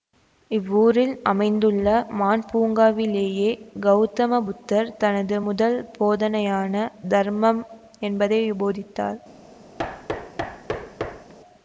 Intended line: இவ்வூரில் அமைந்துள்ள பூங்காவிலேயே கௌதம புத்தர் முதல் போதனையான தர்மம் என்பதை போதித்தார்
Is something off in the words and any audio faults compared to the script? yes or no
yes